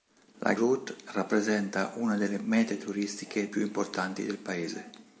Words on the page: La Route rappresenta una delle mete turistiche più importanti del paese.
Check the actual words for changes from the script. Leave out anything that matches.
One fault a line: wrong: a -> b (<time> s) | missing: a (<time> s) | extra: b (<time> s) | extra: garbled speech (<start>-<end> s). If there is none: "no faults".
no faults